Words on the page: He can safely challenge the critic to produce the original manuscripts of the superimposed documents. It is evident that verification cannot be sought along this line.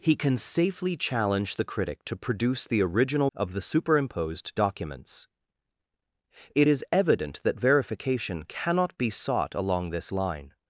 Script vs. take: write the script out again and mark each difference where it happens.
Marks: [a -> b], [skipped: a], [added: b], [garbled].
He can safely challenge the critic to produce the original [skipped: manuscripts] of the superimposed documents. It is evident that verification cannot be sought along this line.